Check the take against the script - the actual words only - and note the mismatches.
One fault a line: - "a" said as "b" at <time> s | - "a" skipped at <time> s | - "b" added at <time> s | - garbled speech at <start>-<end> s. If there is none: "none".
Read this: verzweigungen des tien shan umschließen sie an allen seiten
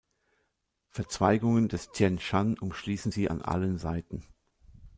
none